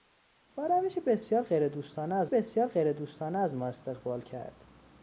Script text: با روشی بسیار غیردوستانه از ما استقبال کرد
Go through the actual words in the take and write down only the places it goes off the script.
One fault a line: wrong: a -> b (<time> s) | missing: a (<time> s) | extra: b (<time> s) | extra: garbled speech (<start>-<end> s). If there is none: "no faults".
extra: بسیار غیردوستانه از (2.2 s)